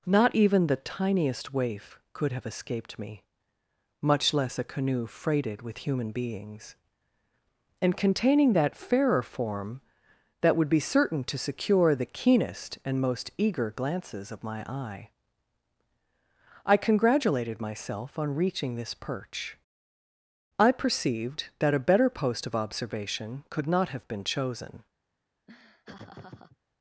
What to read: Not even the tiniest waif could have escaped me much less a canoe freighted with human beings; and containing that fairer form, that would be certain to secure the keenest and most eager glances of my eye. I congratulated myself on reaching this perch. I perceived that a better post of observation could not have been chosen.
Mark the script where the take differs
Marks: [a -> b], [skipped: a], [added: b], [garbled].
Not even the tiniest waif could have escaped me much less a canoe freighted with human beings; and containing that fairer form, that would be certain to secure the keenest and most eager glances of my eye. I congratulated myself on reaching this perch. I perceived that a better post of observation could not have been chosen.